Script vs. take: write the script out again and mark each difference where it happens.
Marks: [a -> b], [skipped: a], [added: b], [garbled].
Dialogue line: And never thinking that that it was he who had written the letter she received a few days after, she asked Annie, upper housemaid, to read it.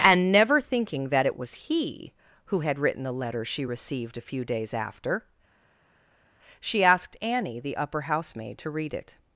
And never thinking that [skipped: that] it was he who had written the letter she received a few days after, she asked Annie, [added: the] upper housemaid, to read it.